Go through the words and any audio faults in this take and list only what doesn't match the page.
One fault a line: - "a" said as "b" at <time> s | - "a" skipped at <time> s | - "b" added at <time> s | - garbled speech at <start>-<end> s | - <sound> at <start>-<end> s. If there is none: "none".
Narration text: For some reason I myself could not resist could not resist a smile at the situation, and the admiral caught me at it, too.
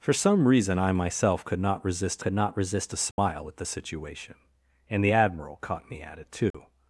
- dropout at 3.1-3.2 s
- dropout at 6.5-6.5 s